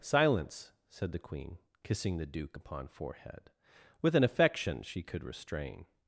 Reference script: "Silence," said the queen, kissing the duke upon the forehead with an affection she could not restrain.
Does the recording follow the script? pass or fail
fail